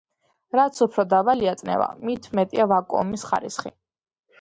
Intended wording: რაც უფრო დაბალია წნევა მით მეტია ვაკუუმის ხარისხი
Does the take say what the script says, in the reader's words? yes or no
yes